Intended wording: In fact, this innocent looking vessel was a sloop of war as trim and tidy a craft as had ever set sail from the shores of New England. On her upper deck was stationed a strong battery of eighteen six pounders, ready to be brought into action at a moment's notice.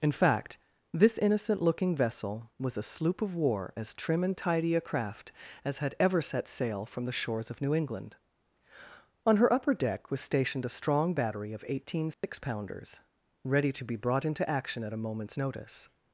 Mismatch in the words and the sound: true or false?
true